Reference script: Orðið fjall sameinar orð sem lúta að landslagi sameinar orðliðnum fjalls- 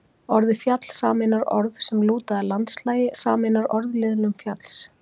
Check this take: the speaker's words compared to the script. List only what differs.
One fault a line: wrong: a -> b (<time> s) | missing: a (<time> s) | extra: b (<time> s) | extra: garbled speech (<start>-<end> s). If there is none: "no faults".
no faults